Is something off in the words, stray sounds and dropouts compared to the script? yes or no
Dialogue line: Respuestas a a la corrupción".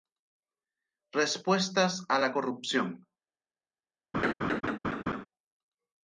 yes